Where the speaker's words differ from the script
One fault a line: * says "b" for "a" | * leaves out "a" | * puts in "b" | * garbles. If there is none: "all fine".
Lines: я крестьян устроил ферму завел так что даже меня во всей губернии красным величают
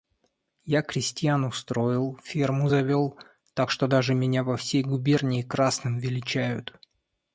all fine